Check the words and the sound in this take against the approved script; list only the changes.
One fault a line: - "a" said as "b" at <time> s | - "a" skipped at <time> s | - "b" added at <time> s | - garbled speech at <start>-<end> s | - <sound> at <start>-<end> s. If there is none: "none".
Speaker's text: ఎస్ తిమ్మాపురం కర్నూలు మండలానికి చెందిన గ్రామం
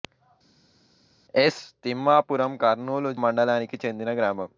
none